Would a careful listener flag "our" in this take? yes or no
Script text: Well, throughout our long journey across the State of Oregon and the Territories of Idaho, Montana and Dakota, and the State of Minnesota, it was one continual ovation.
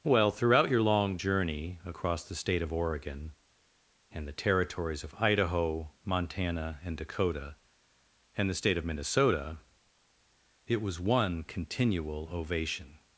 yes